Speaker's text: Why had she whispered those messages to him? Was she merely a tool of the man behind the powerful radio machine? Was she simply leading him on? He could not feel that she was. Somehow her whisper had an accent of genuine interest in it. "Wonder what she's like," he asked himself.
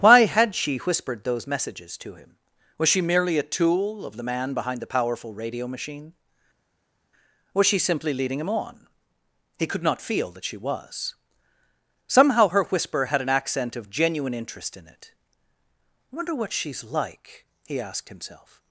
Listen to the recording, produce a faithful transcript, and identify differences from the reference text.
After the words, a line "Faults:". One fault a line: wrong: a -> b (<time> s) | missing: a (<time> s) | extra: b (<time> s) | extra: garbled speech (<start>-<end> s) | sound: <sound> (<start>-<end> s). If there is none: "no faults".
Why had she whispered those messages to him? Was she merely a tool of the man behind the powerful radio machine? Was she simply leading him on? He could not feel that she was. Somehow her whisper had an accent of genuine interest in it. I "Wonder what she's like," he asked himself.
Faults:
extra: I (16.1 s)